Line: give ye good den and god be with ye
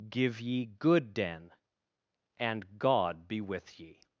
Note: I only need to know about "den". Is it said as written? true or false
true